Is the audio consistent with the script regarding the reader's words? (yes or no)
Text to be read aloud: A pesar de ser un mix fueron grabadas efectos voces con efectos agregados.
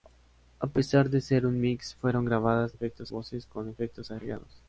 yes